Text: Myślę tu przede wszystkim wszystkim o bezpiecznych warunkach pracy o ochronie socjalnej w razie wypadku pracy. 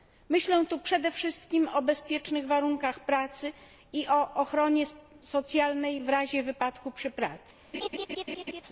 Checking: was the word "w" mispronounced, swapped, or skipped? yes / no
no